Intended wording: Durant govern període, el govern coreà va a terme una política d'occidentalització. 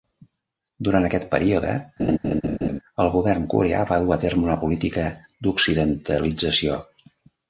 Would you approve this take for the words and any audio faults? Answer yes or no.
no